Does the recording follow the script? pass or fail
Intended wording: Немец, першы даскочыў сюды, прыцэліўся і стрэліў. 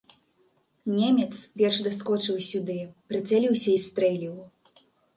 pass